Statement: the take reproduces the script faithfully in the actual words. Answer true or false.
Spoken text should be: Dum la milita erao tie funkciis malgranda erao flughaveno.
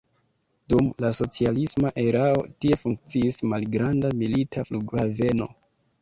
false